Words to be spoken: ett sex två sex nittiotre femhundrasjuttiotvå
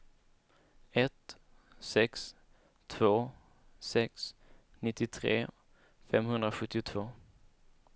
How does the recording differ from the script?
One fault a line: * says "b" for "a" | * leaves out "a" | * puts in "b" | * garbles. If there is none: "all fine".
all fine